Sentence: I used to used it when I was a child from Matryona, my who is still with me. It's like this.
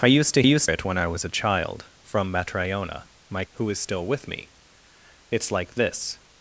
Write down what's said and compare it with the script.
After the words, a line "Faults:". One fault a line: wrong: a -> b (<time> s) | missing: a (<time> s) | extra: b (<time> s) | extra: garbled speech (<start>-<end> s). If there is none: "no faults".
I used to used it when I was a child from Matryona, my who is still with me. It's like this.
Faults:
no faults